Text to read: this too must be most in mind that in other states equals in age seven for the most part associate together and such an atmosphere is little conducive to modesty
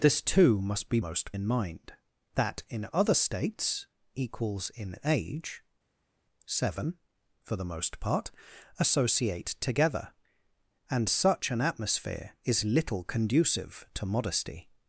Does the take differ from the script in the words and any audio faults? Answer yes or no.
no